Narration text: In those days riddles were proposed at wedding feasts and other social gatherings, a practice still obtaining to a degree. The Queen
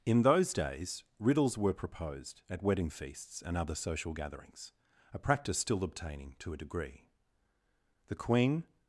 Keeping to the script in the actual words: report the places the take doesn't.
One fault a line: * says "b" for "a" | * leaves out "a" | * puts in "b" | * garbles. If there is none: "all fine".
all fine